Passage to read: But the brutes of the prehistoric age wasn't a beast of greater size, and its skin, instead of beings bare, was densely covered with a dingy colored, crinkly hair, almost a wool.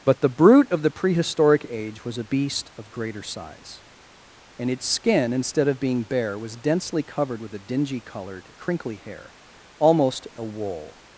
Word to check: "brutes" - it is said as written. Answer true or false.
false